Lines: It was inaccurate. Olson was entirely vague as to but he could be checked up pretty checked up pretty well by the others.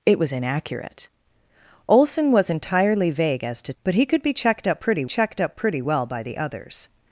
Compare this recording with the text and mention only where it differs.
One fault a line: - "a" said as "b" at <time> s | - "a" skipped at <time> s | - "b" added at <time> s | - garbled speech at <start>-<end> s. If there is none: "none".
none